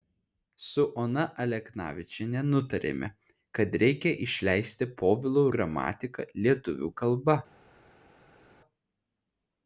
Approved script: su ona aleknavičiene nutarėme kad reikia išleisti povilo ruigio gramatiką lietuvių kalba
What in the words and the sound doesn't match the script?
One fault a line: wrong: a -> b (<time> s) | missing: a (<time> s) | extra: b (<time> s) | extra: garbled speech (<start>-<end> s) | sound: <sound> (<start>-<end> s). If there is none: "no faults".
missing: ruigio (5.5 s)